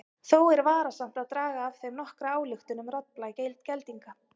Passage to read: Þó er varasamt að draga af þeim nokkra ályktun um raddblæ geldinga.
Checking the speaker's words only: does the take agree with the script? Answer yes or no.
yes